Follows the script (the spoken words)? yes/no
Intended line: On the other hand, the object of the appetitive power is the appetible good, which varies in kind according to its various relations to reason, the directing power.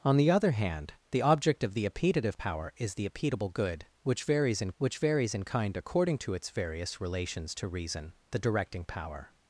no